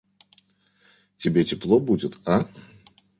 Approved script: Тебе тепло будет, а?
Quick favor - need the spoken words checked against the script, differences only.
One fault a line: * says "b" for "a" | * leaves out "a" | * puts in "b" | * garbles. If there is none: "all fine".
all fine